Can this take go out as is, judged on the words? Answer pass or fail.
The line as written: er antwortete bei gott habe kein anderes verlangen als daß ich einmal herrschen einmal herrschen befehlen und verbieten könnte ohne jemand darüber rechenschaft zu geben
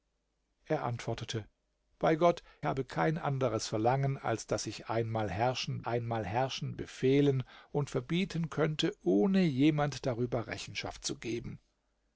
pass